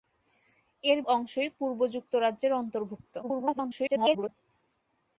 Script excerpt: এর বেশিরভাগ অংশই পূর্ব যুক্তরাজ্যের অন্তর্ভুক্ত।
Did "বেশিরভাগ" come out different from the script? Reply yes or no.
yes